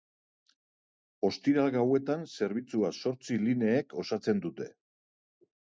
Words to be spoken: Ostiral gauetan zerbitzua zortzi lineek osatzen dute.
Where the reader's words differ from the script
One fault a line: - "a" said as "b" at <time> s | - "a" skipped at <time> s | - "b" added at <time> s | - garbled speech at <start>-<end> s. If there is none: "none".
none